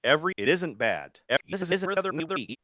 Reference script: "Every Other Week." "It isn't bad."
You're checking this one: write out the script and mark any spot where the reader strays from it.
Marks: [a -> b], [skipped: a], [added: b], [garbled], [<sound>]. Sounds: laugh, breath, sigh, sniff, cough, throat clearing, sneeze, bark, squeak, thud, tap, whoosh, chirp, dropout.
"Every [skipped: Other Week."] "It isn't bad." [garbled]